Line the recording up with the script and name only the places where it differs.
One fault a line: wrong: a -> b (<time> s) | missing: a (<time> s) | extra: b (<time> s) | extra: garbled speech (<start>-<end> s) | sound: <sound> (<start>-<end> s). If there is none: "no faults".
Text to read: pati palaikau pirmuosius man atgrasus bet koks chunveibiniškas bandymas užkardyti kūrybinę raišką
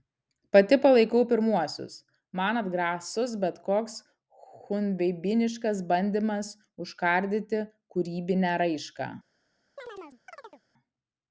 sound: chirp (9.8-10.6 s)